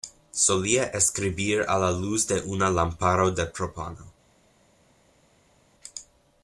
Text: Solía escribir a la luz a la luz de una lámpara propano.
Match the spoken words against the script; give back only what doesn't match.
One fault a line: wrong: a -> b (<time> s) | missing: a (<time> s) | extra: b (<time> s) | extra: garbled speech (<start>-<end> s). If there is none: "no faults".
missing: a la luz (2.2 s)
extra: de (3.3 s)